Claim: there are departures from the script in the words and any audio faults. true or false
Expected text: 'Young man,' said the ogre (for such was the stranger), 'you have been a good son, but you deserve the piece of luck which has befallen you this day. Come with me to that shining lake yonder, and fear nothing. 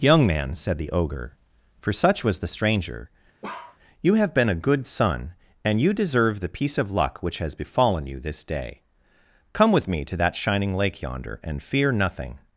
true